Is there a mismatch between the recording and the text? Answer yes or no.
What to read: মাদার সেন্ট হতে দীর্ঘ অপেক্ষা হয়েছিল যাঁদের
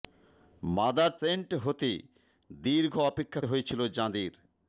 no